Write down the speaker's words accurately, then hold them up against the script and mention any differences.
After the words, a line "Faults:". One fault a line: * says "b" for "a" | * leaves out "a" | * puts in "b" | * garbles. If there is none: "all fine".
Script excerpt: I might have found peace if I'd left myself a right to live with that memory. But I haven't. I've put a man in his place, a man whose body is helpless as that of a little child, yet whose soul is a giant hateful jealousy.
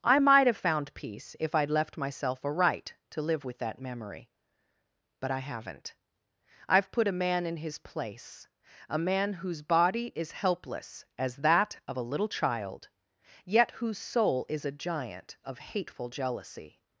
I might have found peace if I'd left myself a right to live with that memory. But I haven't. I've put a man in his place, a man whose body is helpless as that of a little child, yet whose soul is a giant of hateful jealousy.
Faults:
* puts in "of"